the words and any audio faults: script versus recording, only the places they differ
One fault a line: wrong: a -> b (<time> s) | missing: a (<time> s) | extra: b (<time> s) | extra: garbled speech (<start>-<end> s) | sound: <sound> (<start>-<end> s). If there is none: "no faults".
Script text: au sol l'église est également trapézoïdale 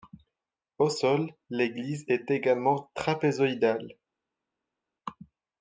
no faults